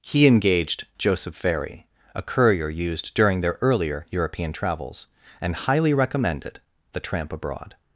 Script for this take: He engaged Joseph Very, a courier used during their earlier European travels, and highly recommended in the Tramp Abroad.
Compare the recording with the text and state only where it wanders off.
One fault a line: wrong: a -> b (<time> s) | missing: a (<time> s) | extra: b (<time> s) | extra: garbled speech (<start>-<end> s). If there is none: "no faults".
missing: in (6.6 s)